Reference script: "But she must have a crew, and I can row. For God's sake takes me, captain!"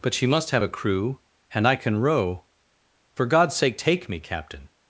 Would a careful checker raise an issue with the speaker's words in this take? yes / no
yes